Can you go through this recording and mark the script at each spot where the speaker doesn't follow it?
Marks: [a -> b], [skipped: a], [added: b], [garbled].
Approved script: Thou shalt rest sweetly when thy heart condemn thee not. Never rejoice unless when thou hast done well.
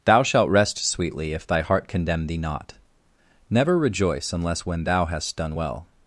Thou shalt rest sweetly [when -> if] thy heart condemn thee not. Never rejoice unless when thou hast done well.